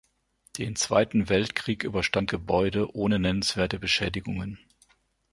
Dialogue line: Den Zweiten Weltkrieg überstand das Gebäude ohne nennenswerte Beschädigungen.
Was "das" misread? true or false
true